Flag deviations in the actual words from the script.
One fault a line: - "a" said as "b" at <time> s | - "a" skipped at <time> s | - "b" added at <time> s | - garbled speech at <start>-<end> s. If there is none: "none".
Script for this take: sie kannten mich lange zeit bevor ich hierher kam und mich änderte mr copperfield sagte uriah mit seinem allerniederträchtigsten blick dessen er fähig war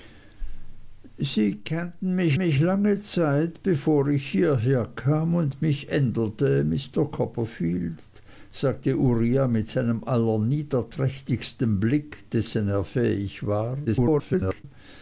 - "mich" added at 2.4 s
- garbled speech at 13.9-14.6 s